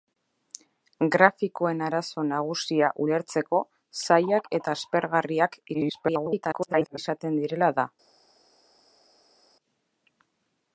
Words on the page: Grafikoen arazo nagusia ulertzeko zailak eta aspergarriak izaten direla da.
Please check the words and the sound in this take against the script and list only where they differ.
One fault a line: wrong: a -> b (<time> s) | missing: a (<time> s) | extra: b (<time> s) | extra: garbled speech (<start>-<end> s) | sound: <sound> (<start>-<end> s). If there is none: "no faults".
extra: garbled speech (5.7-7.0 s)